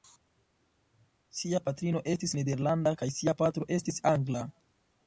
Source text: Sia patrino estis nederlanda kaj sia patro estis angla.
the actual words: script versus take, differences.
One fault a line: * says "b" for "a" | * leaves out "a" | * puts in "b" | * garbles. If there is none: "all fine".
all fine